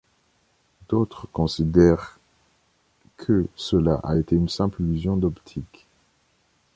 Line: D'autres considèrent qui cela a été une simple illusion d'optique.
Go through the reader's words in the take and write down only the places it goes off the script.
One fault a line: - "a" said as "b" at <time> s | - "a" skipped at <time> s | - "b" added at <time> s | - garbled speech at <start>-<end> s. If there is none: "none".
- "qui" said as "que" at 3.2 s